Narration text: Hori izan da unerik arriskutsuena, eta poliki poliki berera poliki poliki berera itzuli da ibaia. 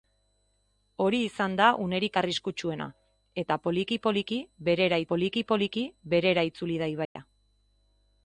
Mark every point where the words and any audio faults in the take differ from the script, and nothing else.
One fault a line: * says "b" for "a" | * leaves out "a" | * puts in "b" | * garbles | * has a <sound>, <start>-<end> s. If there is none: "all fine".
* has a dropout, 7.0-7.2 s